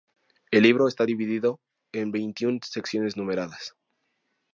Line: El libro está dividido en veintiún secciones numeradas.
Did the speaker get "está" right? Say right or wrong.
right